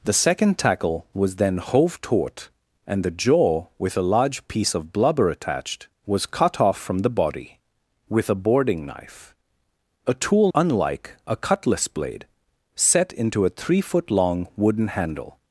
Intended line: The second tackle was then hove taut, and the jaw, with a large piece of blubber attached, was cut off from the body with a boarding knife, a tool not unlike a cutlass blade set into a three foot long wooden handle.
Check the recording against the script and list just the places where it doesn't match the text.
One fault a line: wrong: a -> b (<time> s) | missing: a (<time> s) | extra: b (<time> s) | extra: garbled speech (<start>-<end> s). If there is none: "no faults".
missing: not (10.5 s)